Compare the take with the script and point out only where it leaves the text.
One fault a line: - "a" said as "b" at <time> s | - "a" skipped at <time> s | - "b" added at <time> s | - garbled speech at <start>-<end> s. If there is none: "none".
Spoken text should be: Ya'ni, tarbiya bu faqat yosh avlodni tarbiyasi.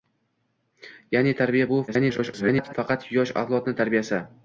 - garbled speech at 1.9-2.7 s